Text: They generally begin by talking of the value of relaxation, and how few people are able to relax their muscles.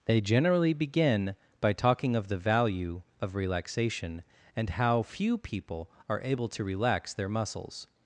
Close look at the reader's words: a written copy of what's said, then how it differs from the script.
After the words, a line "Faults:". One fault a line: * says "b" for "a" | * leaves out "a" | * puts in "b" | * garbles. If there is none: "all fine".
They generally begin by talking of the value of relaxation, and how few people are able to relax their muscles.
Faults:
all fine